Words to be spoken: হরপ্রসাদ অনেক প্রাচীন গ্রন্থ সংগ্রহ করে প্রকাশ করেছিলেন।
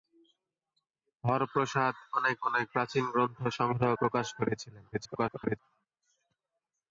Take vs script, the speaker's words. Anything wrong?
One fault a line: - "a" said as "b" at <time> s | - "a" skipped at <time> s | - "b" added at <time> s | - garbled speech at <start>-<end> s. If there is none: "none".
- "অনেক" added at 2.4 s
- "করে" skipped at 3.9 s
- garbled speech at 4.9-5.6 s